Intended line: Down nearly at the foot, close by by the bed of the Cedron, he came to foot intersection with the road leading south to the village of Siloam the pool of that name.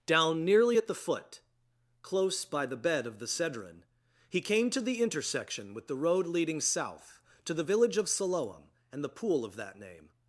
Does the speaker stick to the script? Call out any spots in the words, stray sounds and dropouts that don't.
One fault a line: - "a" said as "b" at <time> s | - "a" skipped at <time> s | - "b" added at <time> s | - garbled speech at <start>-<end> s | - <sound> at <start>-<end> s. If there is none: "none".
- "by" skipped at 2.7 s
- "foot" said as "the" at 4.8 s
- "and" added at 8.9 s